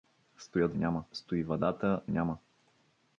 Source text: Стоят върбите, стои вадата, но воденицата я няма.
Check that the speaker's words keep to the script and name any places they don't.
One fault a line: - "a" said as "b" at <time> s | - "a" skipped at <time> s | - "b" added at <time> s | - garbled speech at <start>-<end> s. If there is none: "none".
- "върбите" said as "няма" at 0.8 s
- "но воденицата я" skipped at 2.0 s